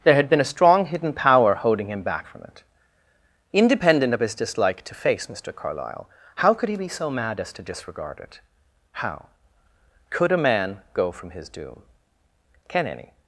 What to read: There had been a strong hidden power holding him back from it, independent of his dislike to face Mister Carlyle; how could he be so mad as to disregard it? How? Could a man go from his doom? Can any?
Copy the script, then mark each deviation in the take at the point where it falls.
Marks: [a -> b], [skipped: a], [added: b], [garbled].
There had been a strong hidden power holding him back from it, independent of his dislike to face Mister Carlyle; how could he be so mad as to disregard it? How? Could a man go from his doom? Can any?